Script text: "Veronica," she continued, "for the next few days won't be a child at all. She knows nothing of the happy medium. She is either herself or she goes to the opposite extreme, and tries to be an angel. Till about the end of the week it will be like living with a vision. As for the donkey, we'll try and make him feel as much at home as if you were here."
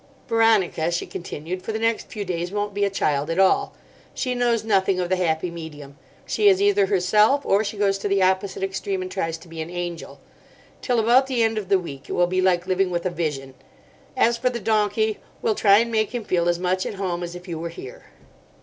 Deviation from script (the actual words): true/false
false